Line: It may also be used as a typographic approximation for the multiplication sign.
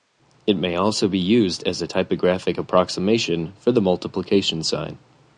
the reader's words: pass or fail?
pass